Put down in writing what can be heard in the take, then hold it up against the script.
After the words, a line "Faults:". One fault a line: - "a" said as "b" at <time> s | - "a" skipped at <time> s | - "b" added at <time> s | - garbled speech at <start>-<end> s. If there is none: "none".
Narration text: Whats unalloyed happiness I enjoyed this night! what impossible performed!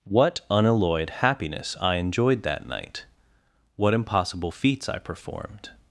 What unalloyed happiness I enjoyed that night! what impossible feats I performed!
Faults:
- "Whats" said as "What" at 0.0 s
- "this" said as "that" at 2.4 s
- "feats I" added at 4.5 s